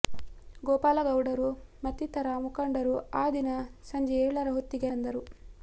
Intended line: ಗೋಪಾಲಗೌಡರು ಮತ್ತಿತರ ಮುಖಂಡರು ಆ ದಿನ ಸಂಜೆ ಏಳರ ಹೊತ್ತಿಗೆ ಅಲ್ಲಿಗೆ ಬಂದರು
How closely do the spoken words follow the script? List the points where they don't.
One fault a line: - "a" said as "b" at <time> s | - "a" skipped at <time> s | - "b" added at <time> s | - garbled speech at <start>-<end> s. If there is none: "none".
- "ಅಲ್ಲಿಗೆ" skipped at 4.9 s